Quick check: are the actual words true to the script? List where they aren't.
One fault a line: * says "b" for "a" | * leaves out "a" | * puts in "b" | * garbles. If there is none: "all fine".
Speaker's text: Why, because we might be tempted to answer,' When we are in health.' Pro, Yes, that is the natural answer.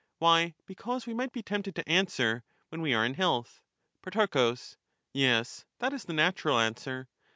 all fine